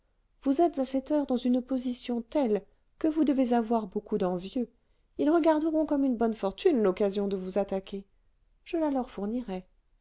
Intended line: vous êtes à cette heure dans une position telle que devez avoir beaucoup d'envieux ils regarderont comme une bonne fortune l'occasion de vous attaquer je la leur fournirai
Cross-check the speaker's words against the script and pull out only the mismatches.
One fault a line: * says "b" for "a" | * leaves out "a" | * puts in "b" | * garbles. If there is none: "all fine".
* puts in "vous"